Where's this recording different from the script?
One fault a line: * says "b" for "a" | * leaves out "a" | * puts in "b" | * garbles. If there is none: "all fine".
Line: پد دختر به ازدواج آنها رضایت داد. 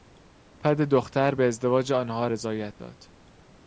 all fine